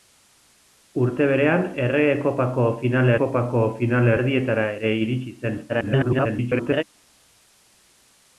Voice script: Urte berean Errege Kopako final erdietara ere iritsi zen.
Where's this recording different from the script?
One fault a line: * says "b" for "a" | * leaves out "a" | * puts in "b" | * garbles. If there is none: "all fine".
* puts in "Kopako final"
* garbles